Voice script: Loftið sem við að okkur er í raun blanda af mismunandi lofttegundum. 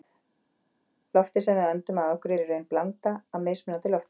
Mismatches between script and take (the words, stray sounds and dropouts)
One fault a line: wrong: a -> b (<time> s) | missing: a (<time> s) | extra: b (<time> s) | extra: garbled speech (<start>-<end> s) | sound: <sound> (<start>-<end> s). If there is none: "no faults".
extra: öndum (1.7 s)